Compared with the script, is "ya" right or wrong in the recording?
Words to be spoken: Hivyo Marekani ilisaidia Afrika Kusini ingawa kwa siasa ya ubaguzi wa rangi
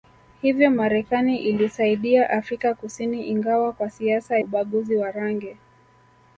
wrong